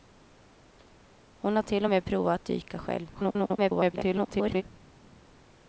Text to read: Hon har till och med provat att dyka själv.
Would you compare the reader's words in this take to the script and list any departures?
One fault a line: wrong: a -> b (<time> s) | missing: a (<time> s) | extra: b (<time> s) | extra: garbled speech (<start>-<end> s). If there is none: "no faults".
extra: garbled speech (3.1-4.6 s)